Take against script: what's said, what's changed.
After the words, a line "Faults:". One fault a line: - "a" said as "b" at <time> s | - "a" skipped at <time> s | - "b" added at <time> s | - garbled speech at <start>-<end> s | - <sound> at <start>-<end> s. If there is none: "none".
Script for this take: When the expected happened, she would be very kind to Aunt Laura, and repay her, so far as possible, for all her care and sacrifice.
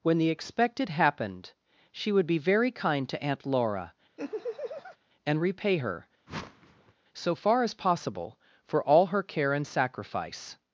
When the expected happened, she would be very kind to Aunt Laura, and repay her, so far as possible, for all her care and sacrifice.
Faults:
- laugh at 4.2-5.0 s
- whoosh at 6.3-6.9 s